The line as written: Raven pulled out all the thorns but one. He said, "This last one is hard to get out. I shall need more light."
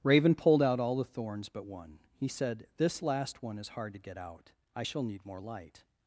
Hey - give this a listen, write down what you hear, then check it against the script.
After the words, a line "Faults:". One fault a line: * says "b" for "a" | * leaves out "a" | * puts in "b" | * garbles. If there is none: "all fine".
Raven pulled out all the thorns but one. He said, "This last one is hard to get out. I shall need more light."
Faults:
all fine